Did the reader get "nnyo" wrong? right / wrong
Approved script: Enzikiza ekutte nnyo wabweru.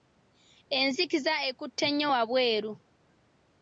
right